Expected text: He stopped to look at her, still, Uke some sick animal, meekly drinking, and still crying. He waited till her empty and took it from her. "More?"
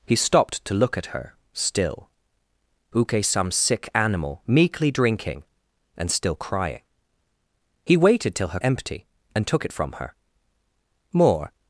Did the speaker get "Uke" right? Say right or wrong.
right